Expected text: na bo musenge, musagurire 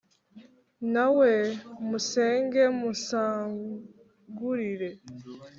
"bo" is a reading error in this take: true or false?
true